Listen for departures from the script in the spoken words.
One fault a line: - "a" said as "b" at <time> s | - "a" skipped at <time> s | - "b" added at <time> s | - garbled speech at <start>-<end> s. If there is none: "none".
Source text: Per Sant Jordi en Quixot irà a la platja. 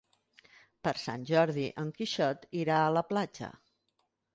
none